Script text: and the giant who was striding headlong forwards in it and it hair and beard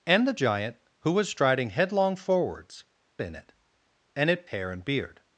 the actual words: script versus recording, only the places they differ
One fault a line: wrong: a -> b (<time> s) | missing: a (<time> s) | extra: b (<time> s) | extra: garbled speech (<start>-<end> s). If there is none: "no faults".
no faults